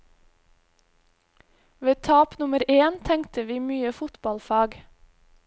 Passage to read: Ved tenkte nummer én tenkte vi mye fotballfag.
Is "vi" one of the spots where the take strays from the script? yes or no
no